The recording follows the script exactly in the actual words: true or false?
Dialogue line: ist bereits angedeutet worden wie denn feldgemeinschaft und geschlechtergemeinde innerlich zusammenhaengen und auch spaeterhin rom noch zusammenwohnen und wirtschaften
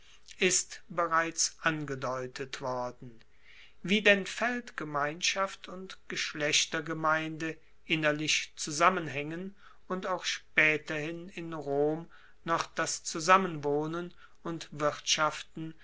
false